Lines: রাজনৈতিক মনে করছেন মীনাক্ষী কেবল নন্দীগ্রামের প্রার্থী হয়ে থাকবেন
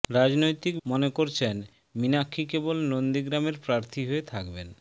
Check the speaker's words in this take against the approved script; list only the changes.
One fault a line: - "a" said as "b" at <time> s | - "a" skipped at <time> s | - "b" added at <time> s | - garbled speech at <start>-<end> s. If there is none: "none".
none